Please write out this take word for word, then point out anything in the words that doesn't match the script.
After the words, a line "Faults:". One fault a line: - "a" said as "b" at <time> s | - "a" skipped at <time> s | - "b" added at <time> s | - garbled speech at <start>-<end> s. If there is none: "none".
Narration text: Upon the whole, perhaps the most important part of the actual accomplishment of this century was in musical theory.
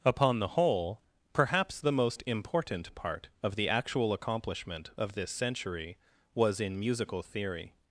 Upon the whole, perhaps the most important part of the actual accomplishment of this century was in musical theory.
Faults:
none